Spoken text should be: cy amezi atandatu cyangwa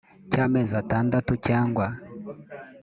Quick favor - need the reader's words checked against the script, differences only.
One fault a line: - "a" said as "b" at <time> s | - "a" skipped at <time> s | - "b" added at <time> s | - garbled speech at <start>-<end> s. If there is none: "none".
none